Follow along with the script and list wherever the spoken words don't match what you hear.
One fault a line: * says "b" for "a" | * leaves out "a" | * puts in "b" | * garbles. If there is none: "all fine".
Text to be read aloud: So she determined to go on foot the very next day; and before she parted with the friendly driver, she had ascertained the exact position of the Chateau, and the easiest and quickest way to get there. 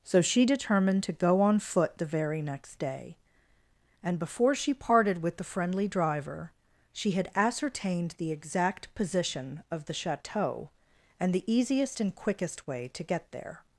all fine